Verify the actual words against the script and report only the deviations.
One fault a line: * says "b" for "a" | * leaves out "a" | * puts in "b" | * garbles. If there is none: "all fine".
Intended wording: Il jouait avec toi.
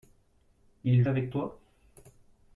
* leaves out "jouait"